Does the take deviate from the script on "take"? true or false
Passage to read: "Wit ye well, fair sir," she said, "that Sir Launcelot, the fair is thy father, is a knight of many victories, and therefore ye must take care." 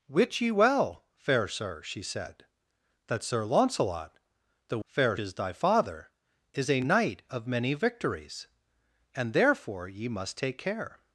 false